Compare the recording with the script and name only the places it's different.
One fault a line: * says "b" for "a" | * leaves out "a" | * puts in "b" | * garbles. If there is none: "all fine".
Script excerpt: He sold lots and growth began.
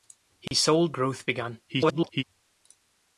* leaves out "lots and"
* garbles